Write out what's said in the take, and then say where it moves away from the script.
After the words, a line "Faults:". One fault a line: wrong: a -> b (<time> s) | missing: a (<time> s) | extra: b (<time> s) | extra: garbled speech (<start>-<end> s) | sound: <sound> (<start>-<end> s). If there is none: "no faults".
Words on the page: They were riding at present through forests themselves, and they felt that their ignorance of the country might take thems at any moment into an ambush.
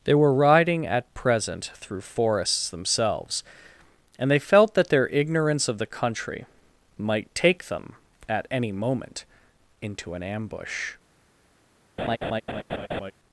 They were riding at present through forests themselves, and they felt that their ignorance of the country might take them at any moment into an ambush.
Faults:
wrong: thems -> them (7.7 s)
sound: laugh (12.0-13.1 s)